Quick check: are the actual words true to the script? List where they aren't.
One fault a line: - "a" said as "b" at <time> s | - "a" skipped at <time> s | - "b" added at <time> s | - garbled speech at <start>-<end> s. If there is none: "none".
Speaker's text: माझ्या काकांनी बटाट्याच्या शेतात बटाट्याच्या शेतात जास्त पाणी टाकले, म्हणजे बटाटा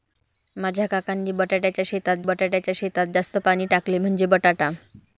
none